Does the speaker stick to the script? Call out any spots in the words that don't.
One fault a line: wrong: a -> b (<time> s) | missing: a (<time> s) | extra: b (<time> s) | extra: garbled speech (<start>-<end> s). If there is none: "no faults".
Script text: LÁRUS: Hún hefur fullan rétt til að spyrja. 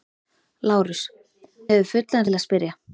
missing: Hún (1.0 s)
missing: rétt (2.3 s)